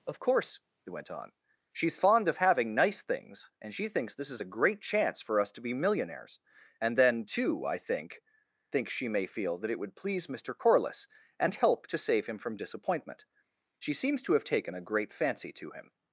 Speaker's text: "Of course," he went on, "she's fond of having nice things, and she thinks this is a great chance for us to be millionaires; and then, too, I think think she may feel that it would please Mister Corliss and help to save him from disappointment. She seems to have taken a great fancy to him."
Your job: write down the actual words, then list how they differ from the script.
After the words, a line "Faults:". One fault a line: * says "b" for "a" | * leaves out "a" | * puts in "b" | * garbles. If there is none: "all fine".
"Of course," he went on, "she's fond of having nice things, and she thinks this is a great chance for us to be millionaires; and then, too, I think think she may feel that it would please Mister Corliss and help to save him from disappointment. She seems to have taken a great fancy to him."
Faults:
all fine